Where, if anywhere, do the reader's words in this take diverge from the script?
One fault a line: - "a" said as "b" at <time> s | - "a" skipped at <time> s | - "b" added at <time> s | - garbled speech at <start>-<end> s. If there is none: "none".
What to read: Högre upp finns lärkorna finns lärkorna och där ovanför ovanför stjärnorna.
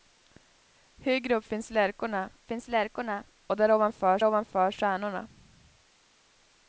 none